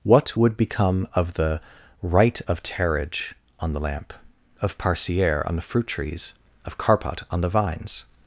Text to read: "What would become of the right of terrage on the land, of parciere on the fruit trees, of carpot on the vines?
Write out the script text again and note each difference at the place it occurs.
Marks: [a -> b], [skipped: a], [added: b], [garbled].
"What would become of the right of terrage on the [land, -> lamp] of parciere on the fruit trees, of carpot on the vines?